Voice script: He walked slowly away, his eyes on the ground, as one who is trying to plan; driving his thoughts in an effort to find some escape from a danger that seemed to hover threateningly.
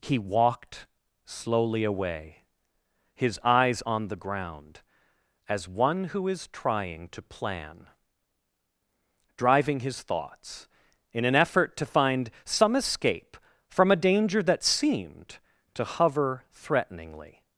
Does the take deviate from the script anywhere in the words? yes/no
no